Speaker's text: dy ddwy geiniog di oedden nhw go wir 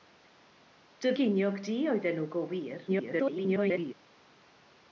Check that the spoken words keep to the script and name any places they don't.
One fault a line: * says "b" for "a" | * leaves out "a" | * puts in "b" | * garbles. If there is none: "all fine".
* leaves out "ddwy"
* garbles